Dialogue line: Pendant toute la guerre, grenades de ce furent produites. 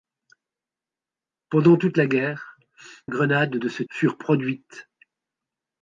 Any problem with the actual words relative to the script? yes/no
no